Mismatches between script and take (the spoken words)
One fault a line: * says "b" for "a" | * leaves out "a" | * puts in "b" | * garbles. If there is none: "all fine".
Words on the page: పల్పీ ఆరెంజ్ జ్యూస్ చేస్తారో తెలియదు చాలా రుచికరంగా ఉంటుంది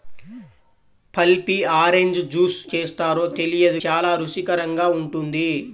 all fine